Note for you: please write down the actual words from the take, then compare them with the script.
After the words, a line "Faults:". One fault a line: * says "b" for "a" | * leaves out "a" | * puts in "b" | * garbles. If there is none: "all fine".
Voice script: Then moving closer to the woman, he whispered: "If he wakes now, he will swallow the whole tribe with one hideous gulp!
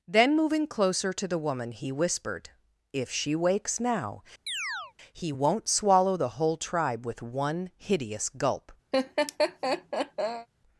Then moving closer to the woman, he whispered: "If she wakes now, he won't swallow the whole tribe with one hideous gulp!
Faults:
* says "she" for "he"
* says "won't" for "will"